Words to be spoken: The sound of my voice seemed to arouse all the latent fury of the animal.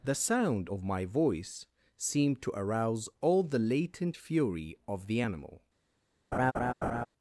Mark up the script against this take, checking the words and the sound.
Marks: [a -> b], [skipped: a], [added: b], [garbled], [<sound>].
The sound of my voice seemed to arouse all the latent fury of the animal. [laugh]